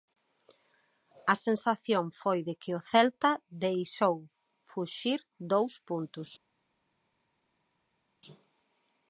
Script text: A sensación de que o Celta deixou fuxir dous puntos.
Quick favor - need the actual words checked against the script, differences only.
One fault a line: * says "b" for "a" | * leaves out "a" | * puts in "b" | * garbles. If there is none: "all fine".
* puts in "foi"